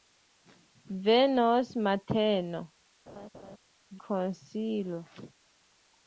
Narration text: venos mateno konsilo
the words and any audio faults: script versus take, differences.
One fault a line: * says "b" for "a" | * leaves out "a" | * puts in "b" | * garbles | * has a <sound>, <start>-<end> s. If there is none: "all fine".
* has a laugh, 3.1-3.6 s